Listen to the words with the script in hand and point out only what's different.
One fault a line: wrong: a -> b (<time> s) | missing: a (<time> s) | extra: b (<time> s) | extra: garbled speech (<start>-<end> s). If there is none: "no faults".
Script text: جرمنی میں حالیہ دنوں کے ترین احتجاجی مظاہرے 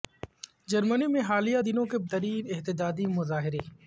no faults